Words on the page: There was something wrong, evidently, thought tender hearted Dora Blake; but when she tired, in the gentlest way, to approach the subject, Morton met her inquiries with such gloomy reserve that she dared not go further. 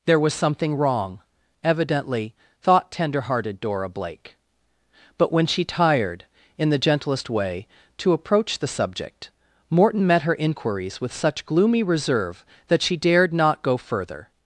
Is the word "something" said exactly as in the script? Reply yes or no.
yes